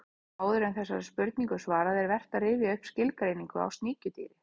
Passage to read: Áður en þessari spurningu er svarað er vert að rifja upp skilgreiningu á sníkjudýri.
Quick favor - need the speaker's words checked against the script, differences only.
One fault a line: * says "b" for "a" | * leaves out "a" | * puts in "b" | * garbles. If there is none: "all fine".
all fine